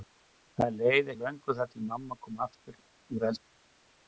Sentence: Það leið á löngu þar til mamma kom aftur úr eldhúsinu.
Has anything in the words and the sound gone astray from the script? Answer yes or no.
no